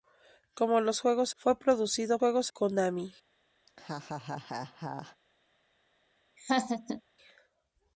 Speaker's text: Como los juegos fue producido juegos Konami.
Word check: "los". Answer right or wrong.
right